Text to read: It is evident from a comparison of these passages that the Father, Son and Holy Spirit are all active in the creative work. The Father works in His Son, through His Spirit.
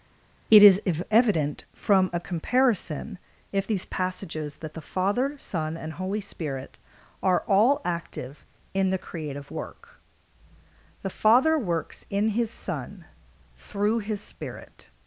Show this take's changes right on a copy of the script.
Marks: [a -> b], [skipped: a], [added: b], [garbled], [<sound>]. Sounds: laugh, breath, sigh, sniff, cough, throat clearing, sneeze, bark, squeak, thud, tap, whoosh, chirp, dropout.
It is evident from a comparison [of -> if] these passages that the Father, Son and Holy Spirit are all active in the creative work. The Father works in His Son, through His Spirit.